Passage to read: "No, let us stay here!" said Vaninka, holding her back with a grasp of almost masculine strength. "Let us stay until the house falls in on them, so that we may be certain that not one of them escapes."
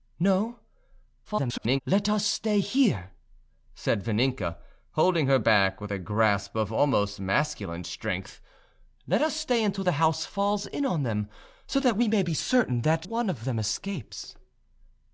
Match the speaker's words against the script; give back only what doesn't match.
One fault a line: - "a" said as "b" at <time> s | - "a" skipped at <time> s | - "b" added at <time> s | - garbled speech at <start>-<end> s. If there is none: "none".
- garbled speech at 1.2-1.8 s
- "not" skipped at 13.1 s